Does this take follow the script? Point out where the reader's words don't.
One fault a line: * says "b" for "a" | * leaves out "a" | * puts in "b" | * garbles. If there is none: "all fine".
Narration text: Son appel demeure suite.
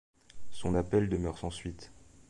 * puts in "sans"